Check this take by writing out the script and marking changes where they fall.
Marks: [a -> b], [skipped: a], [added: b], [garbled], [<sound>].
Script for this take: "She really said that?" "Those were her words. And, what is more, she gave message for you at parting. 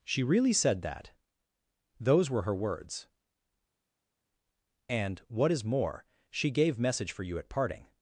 "She really said that?" "Those were her words. And, what is more, she gave message for you at parting.